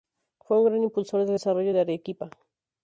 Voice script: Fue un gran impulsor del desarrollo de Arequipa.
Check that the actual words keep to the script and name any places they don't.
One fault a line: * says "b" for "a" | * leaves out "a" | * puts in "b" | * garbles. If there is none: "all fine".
all fine